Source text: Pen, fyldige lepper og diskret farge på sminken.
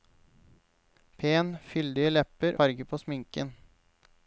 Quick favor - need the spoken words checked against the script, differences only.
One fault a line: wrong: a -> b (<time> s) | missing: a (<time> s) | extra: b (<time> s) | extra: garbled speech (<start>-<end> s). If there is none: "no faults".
missing: og diskret (2.6 s)